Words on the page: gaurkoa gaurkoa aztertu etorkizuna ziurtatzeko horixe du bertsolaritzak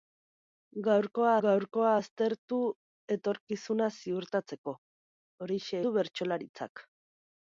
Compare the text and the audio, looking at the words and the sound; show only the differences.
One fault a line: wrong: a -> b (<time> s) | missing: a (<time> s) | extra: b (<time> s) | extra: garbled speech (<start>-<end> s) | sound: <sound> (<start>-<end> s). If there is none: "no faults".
no faults